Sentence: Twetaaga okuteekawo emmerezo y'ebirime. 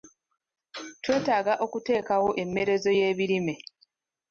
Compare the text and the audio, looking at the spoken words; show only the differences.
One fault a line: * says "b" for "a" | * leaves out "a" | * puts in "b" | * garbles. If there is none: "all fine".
all fine